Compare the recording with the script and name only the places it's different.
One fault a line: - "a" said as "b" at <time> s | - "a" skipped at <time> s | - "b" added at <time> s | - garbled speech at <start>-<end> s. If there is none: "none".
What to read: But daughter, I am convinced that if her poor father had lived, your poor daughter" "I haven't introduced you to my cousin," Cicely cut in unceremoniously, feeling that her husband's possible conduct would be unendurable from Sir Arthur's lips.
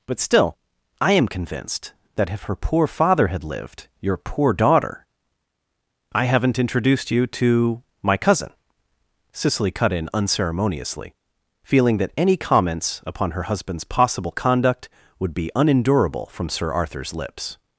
- "daughter" said as "still" at 0.2 s
- "any comments upon" added at 12.2 s